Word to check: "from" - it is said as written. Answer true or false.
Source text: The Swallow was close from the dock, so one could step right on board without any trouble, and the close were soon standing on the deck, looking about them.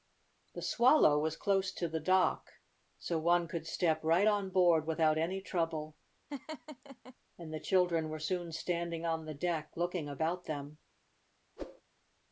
false